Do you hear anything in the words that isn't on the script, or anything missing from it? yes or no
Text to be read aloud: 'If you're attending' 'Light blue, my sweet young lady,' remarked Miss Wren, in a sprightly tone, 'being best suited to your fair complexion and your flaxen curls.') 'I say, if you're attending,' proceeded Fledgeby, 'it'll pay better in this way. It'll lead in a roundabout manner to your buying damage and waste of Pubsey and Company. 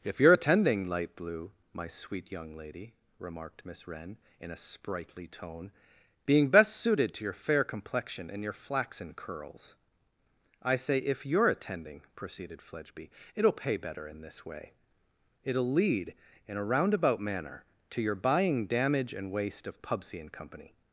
no